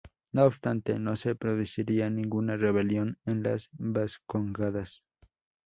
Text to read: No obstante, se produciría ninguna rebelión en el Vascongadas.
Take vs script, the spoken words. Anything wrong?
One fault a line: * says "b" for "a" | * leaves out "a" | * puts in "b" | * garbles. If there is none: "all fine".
* puts in "no"
* says "las" for "el"